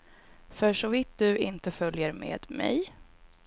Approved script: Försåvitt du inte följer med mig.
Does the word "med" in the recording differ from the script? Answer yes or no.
no